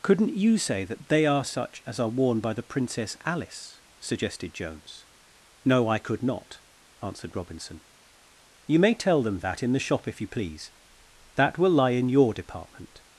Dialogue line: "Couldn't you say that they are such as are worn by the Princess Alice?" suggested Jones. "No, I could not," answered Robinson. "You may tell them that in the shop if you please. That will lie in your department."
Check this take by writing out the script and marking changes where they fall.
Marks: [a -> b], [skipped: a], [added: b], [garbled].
"Couldn't you say that they are such as are worn by the Princess Alice?" suggested Jones. "No, I could not," answered Robinson. "You may tell them that in the shop if you please. That will lie in your department."